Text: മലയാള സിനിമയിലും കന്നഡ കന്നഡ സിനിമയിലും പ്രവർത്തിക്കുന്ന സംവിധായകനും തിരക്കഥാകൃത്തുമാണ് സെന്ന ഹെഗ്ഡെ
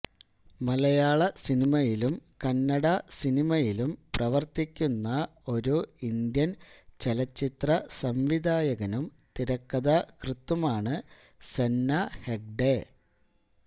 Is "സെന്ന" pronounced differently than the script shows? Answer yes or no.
no